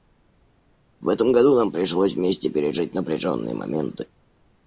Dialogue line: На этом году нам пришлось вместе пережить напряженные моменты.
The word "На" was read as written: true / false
false